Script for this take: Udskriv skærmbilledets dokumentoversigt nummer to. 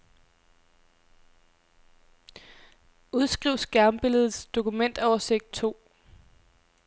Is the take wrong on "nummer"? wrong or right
wrong